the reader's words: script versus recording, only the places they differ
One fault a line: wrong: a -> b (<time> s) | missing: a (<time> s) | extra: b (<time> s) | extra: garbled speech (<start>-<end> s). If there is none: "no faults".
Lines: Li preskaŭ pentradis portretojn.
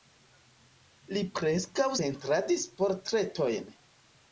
no faults